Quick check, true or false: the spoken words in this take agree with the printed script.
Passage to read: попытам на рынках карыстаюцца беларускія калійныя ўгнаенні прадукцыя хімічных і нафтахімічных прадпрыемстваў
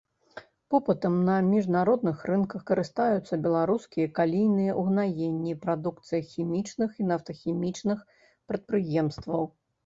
false